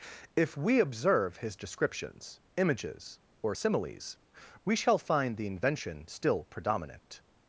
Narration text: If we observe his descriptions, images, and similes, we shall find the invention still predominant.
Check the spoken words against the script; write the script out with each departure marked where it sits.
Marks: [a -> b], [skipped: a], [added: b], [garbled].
If we observe his descriptions, images, [and -> or] similes, we shall find the invention still predominant.